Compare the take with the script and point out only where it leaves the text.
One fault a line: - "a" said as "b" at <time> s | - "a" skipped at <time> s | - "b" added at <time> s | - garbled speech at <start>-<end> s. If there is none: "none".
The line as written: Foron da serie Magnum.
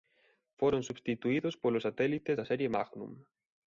- "substituídos polos satélites" added at 0.9 s